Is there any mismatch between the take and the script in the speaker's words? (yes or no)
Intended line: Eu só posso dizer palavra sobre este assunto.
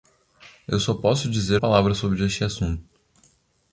no